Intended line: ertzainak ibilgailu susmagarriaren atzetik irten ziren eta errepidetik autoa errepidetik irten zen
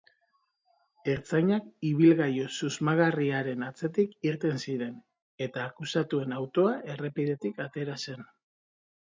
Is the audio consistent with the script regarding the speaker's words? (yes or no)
no